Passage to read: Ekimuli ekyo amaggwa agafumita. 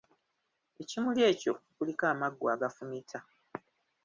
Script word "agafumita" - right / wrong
right